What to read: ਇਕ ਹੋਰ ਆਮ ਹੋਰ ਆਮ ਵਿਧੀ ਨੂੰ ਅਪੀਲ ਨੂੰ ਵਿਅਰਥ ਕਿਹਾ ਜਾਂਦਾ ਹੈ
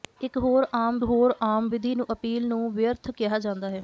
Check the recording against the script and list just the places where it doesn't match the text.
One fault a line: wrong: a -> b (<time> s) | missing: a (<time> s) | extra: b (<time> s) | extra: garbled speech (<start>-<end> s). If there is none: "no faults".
no faults